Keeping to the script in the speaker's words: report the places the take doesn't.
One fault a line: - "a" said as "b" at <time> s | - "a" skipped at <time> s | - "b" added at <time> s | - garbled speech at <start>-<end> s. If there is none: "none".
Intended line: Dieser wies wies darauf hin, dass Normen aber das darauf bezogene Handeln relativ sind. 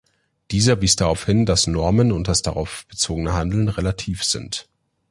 - "wies" skipped at 0.9 s
- "aber" said as "und" at 2.1 s